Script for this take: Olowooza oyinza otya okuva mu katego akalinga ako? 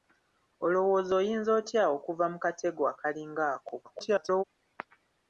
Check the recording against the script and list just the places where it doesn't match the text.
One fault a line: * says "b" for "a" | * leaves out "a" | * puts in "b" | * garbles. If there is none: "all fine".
* garbles